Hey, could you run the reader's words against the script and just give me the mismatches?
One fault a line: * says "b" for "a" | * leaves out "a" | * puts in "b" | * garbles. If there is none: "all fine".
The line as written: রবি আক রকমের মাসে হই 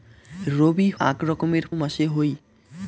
all fine